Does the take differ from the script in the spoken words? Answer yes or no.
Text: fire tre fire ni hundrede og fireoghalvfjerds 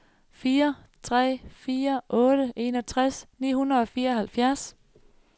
yes